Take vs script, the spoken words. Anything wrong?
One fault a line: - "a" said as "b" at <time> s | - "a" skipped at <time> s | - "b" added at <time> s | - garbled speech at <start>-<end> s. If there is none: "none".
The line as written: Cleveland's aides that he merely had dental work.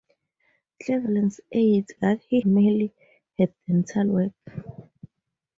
none